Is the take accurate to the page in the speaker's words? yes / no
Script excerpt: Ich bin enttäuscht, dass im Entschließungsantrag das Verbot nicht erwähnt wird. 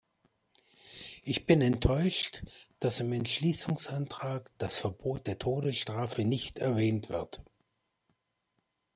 no